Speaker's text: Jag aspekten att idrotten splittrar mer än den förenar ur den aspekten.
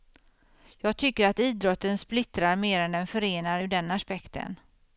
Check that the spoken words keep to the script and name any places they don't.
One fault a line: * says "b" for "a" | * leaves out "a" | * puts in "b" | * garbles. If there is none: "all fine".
* says "tycker" for "aspekten"